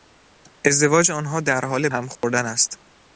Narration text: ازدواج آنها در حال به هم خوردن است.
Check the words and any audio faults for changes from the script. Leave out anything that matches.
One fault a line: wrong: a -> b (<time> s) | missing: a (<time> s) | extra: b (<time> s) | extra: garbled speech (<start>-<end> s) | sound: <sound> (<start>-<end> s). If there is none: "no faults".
missing: به (1.9 s)
sound: dropout (2.2-2.2 s)